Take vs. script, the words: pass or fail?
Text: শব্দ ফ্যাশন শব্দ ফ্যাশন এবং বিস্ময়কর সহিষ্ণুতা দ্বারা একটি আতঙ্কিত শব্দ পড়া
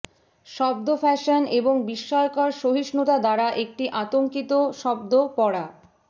fail